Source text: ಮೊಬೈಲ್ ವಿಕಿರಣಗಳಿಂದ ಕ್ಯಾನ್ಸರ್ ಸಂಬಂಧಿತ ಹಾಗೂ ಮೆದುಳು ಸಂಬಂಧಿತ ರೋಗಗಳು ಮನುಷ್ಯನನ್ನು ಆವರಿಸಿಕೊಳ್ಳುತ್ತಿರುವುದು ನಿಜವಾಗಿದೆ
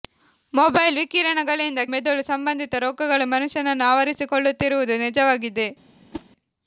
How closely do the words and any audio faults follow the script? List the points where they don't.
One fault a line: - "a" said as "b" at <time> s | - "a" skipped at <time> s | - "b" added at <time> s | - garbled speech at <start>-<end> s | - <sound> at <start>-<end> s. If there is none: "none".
- "ಕ್ಯಾನ್ಸರ್ ಸಂಬಂಧಿತ ಹಾಗೂ" skipped at 1.8 s
- whoosh at 6.1-6.3 s